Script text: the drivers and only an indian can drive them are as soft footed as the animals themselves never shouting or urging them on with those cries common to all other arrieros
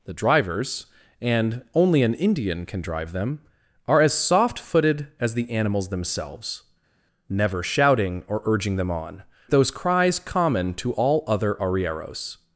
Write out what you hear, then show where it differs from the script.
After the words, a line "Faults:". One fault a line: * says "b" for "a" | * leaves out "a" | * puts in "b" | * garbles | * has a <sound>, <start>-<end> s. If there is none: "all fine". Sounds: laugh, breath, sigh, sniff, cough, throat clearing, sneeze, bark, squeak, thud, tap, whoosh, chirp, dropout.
the drivers and only an indian can drive them are as soft footed as the animals themselves never shouting or urging them on those cries common to all other arrieros
Faults:
* leaves out "with"